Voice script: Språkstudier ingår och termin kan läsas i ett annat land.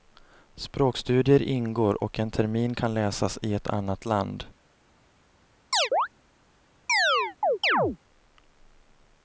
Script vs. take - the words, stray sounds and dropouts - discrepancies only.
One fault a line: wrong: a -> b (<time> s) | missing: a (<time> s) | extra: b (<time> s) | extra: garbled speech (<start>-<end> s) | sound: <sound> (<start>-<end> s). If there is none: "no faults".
extra: en (2.2 s)
sound: chirp (5.7-6.1 s)
sound: chirp (6.9-8.0 s)